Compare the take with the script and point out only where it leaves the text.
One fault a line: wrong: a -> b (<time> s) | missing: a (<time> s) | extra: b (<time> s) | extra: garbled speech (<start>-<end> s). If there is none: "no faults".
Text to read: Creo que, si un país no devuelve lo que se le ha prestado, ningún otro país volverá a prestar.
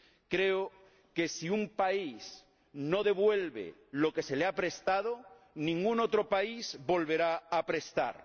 no faults